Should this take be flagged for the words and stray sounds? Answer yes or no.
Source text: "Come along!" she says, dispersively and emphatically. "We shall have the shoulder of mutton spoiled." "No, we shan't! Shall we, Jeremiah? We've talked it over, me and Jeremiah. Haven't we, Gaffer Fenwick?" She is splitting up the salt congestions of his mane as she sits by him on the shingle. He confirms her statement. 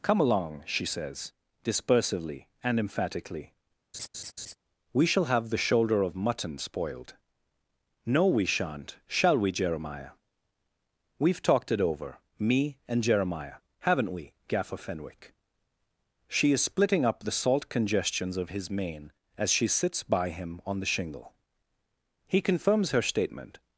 yes